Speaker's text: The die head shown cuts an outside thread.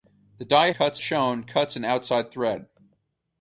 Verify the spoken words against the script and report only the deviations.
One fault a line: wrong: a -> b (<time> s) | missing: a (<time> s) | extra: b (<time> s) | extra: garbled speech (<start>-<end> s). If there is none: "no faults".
wrong: head -> cuts (0.7 s)